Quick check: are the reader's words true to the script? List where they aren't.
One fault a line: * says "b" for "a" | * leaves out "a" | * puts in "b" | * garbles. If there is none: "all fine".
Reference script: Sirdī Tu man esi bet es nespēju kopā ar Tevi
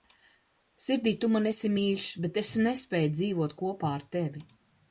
* puts in "mīļš"
* puts in "dzīvot"